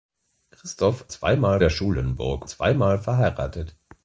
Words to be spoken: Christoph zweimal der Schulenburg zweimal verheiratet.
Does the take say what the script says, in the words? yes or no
yes